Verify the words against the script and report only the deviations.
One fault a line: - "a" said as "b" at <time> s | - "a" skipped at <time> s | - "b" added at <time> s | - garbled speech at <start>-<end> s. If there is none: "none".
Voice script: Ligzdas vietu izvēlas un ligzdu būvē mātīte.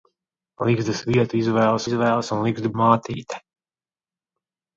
- "izvēlas" added at 1.8 s
- "būvē" skipped at 2.7 s